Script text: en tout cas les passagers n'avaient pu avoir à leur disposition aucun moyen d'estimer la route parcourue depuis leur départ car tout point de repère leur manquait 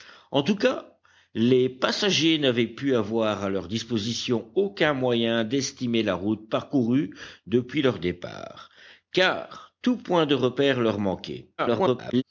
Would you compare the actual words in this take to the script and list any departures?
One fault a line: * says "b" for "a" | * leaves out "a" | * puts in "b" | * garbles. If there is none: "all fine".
* garbles